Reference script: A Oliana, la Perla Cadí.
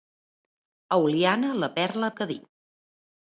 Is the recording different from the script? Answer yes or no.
no